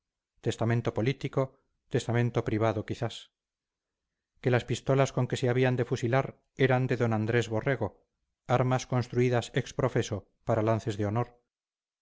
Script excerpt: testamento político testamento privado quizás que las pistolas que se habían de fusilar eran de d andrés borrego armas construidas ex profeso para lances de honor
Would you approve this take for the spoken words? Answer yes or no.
no